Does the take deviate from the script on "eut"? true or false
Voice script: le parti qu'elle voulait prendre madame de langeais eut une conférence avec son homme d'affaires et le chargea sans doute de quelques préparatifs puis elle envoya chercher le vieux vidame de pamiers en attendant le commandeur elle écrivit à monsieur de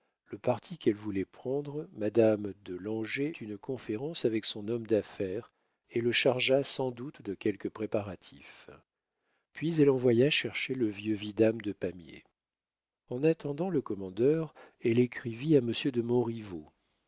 true